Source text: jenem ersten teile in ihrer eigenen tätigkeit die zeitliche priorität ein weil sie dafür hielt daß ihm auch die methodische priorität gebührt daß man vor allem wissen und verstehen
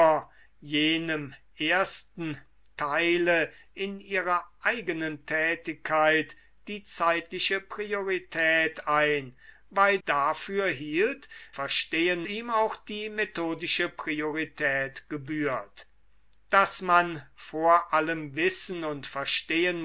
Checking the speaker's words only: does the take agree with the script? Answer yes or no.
no